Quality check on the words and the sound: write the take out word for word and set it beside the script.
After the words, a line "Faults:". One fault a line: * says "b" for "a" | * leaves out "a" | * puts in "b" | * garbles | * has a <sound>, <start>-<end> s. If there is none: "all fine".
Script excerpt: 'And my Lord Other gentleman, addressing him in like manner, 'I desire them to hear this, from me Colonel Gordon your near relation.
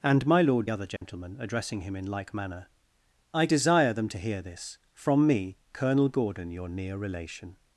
'And my Lord Other gentleman, addressing him in like manner, 'I desire them to hear this, from me Colonel Gordon your near relation.
Faults:
* has a dropout, 1.0-1.0 s